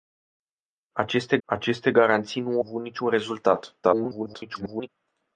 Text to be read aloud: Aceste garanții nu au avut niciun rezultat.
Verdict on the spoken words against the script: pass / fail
fail